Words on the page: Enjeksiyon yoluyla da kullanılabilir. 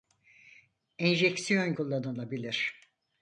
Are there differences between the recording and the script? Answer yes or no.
yes